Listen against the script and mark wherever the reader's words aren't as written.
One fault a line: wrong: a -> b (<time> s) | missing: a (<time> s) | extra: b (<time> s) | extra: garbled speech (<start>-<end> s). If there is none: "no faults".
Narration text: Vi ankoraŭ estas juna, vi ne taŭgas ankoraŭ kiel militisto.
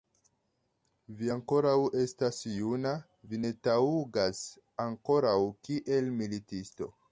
no faults